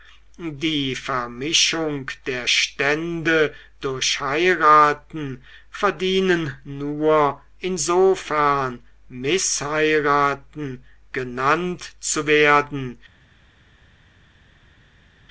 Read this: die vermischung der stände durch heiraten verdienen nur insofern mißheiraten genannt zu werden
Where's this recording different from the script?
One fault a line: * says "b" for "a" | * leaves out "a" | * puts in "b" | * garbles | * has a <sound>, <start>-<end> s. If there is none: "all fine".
all fine